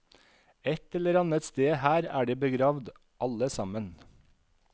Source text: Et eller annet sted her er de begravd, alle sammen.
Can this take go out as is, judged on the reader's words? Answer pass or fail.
pass